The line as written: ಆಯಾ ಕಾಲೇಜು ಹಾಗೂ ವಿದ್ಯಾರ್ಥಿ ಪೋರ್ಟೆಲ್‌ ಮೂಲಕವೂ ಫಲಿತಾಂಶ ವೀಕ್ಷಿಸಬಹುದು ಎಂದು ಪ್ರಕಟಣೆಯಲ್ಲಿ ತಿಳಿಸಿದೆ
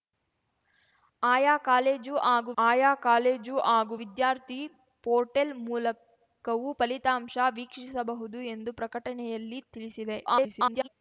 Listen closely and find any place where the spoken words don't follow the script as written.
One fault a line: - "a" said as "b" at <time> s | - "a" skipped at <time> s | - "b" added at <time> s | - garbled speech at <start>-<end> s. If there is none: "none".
- "ಆಯಾ ಕಾಲೇಜು ಹಾಗೂ" added at 2.6 s
- garbled speech at 10.3-10.9 s